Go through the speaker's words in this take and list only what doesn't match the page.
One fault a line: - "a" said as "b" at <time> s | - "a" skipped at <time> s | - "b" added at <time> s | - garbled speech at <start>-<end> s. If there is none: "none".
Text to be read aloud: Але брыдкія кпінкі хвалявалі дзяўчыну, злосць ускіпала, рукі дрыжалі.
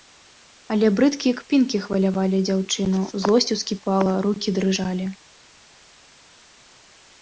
none